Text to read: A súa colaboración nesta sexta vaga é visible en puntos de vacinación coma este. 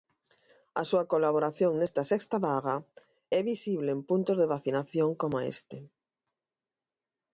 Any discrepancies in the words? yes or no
no